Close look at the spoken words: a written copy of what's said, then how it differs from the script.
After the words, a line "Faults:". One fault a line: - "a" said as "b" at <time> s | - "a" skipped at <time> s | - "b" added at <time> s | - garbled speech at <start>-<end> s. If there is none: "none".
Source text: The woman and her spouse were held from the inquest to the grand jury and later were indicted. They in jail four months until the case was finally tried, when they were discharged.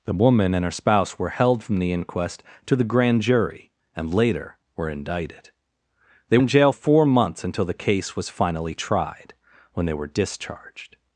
The woman and her spouse were held from the inquest to the grand jury and later were indicted. They in jail four months until the case was finally tried, when they were discharged.
Faults:
none